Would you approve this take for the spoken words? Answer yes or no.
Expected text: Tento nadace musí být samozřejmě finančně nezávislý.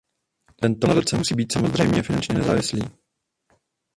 yes